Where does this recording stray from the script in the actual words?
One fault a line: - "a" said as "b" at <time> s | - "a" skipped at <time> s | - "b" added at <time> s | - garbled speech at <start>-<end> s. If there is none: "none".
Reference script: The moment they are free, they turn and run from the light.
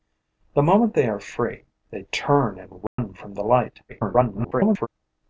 - garbled speech at 3.9-4.9 s